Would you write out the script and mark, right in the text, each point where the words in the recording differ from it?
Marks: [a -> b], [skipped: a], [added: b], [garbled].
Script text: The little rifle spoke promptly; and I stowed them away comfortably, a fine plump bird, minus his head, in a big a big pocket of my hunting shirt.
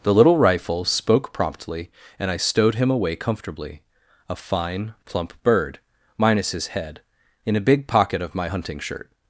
The little rifle spoke promptly; and I stowed [them -> him] away comfortably, a fine plump bird, minus his head, in a big [skipped: a big] pocket of my hunting shirt.